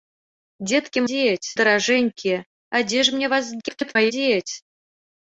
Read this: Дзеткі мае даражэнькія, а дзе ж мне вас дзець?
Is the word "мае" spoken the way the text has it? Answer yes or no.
no